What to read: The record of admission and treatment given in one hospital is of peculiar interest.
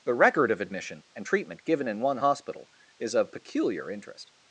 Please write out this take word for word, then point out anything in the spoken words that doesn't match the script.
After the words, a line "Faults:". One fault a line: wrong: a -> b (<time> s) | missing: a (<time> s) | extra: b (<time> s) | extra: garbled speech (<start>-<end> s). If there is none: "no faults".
The record of admission and treatment given in one hospital is of peculiar interest.
Faults:
no faults